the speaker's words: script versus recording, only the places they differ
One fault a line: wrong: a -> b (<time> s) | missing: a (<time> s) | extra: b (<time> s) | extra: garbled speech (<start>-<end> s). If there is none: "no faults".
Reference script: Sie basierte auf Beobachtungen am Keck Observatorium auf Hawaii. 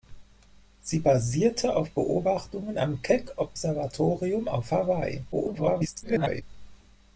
extra: garbled speech (5.3-6.4 s)